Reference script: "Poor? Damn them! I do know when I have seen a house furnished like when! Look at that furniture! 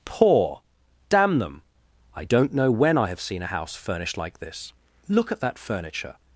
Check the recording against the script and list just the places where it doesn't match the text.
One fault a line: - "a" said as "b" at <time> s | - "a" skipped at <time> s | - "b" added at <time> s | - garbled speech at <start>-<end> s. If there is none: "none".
- "do" said as "don't" at 2.2 s
- "when" said as "this" at 4.4 s